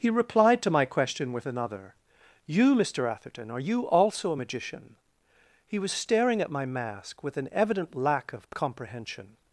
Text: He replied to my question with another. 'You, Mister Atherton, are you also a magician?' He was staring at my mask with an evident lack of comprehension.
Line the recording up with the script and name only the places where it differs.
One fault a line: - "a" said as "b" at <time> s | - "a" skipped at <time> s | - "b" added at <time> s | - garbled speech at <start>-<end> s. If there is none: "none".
none